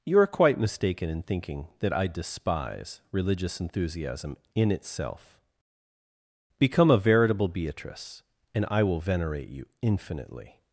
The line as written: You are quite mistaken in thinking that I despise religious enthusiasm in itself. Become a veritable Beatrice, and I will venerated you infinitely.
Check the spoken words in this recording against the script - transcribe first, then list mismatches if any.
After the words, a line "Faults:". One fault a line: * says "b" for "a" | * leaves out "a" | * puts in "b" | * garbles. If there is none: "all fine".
You are quite mistaken in thinking that I despise religious enthusiasm in itself. Become a veritable Beatrice, and I will venerate you infinitely.
Faults:
* says "venerate" for "venerated"